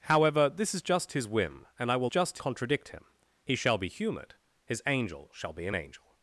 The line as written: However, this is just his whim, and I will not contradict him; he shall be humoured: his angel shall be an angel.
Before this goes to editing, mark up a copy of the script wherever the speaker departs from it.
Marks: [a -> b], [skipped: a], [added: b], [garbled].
However, this is just his whim, and I will [not -> just] contradict him; he shall be humoured: his angel shall be an angel.